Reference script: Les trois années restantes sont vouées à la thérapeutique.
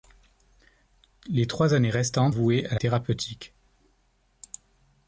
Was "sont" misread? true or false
true